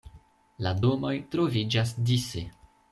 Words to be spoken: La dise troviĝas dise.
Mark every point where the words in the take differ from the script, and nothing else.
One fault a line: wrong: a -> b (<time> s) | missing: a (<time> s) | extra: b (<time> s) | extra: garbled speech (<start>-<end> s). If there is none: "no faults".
wrong: dise -> domoj (0.8 s)